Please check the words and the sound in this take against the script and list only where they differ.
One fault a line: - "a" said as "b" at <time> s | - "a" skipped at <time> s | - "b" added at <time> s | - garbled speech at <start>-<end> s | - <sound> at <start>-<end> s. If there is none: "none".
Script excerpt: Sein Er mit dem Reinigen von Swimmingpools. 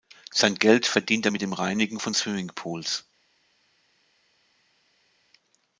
- "Geld verdient" added at 0.6 s